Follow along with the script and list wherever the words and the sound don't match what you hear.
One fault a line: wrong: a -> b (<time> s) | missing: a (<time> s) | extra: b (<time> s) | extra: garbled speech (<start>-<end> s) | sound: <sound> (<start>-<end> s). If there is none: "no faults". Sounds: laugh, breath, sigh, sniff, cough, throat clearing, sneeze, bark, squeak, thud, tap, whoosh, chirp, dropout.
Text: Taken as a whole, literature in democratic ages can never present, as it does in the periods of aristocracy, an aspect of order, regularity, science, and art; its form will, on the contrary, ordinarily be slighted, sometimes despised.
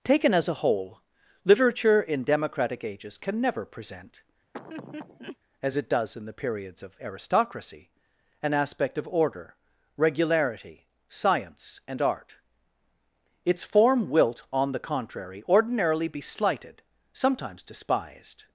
sound: laugh (4.5-5.4 s)
wrong: will -> wilt (14.1 s)